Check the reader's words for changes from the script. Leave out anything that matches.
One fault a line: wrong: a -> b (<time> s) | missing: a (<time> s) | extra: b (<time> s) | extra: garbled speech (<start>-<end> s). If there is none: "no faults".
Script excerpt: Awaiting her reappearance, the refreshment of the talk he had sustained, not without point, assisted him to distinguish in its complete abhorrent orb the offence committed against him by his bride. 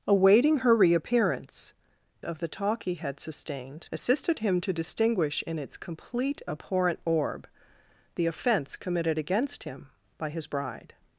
missing: the refreshment (1.7 s)
missing: not without point (3.9 s)